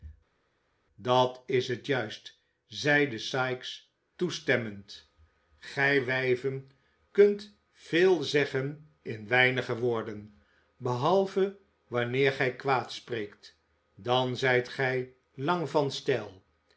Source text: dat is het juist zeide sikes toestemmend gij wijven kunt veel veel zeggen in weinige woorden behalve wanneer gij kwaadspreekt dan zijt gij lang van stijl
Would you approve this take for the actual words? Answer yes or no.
no